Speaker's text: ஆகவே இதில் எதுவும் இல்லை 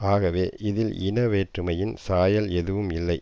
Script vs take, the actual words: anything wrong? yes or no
yes